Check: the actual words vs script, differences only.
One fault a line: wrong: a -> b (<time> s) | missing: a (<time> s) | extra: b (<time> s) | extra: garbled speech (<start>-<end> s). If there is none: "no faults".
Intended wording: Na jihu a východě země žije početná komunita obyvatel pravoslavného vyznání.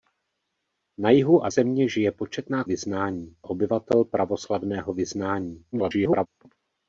missing: východě (1.5 s)
wrong: komunita -> vyznání (2.6 s)
extra: garbled speech (5.7-6.3 s)